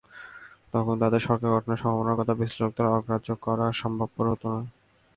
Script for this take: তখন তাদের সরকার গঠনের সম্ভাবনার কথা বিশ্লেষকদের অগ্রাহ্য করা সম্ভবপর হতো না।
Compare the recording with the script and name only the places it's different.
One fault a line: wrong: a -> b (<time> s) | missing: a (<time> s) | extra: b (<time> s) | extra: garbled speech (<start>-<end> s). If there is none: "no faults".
no faults